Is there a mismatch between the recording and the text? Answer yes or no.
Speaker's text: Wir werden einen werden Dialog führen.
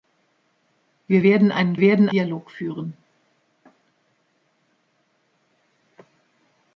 no